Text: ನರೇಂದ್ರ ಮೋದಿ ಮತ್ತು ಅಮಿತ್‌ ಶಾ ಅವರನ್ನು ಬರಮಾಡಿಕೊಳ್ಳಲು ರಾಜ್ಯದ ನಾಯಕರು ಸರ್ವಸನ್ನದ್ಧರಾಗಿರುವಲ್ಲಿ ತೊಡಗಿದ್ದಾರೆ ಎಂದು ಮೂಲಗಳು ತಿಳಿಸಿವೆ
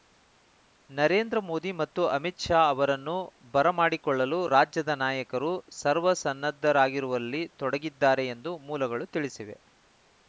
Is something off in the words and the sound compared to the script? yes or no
no